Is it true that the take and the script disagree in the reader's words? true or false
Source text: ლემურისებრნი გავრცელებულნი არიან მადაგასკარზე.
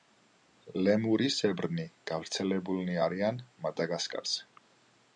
false